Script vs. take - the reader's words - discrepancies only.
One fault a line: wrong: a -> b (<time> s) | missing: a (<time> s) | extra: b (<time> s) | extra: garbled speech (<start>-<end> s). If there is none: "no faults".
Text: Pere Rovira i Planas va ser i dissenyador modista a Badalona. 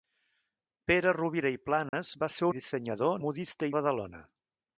no faults